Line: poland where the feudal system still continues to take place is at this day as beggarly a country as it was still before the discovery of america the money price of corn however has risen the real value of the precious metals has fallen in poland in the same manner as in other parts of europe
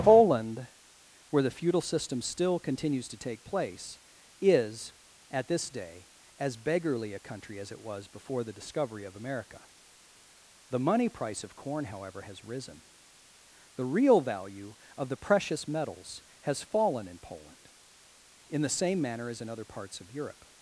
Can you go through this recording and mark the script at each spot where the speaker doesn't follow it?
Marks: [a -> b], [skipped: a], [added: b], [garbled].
poland where the feudal system still continues to take place is at this day as beggarly a country as it was [skipped: still] before the discovery of america the money price of corn however has risen the real value of the precious metals has fallen in poland in the same manner as in other parts of europe